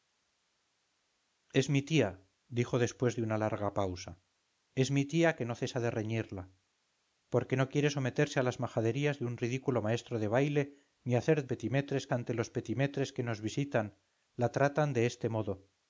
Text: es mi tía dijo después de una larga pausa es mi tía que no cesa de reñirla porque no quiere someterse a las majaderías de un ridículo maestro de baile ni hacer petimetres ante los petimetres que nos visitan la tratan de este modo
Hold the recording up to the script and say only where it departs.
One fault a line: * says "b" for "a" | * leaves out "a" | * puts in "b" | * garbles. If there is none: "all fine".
all fine